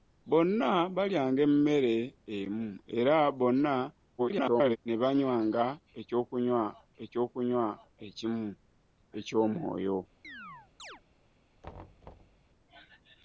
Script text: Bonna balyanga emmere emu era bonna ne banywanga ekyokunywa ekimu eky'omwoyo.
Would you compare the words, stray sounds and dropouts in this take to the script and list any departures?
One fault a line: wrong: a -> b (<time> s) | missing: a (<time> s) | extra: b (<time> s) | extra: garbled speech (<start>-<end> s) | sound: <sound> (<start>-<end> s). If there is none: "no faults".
extra: garbled speech (4.2-4.8 s)
extra: ekyokunywa (7.0 s)
sound: chirp (10.2-11.0 s)
sound: thud (11.6-12.4 s)